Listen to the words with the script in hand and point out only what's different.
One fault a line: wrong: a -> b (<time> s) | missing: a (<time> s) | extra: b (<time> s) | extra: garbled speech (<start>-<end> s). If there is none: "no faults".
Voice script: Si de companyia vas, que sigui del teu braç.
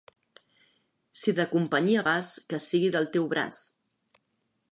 no faults